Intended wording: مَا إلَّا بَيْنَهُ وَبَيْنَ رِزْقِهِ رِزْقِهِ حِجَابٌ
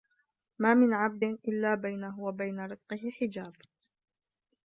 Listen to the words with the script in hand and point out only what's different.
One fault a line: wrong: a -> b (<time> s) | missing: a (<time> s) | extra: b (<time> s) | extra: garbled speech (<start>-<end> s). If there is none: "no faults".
extra: مِنْ عَبْدٍ (0.7 s)
missing: رِزْقِهِ (3.1 s)